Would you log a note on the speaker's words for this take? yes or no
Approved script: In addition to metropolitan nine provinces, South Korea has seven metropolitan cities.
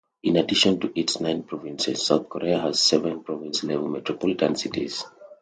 yes